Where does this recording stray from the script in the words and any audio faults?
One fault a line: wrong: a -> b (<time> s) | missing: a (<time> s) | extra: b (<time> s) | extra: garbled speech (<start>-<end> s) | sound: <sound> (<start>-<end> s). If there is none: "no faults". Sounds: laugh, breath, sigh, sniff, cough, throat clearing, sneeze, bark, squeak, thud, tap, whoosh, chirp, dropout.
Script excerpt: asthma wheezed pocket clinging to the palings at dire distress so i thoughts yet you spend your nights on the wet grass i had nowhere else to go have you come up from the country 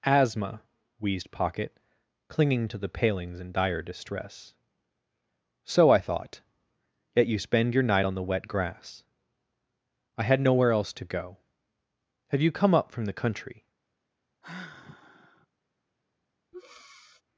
wrong: at -> in (3.4 s)
wrong: thoughts -> thought (6.0 s)
wrong: nights -> night (7.8 s)
sound: sigh (14.4-15.5 s)
sound: breath (16.5-17.2 s)